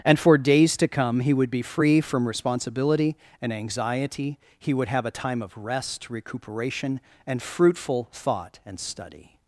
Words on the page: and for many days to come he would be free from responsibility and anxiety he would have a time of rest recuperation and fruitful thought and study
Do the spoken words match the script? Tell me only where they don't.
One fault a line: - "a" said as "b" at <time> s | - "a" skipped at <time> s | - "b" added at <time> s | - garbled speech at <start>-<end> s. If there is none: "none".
- "many" skipped at 0.4 s